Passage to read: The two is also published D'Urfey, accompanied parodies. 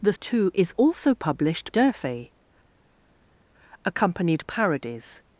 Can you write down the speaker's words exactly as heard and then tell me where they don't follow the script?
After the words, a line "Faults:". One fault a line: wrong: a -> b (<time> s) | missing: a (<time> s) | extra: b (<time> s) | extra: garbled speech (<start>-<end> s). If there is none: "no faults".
The two is also published D'Urfey, accompanied parodies.
Faults:
no faults